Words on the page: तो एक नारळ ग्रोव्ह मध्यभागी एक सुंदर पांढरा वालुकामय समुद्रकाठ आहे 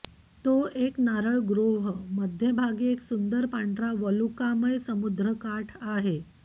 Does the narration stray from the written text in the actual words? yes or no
no